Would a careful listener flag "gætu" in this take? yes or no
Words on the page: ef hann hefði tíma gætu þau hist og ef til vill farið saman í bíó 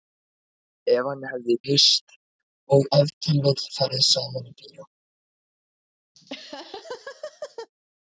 yes